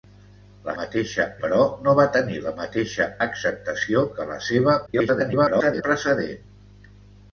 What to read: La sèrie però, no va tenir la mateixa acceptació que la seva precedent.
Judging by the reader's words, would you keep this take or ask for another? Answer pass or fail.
fail